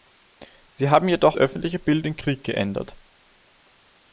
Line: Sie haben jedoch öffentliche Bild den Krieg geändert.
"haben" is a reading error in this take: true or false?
false